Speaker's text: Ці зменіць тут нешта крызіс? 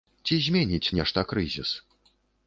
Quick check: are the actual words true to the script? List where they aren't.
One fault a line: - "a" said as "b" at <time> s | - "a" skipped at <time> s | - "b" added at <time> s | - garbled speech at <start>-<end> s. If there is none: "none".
- "тут" skipped at 0.9 s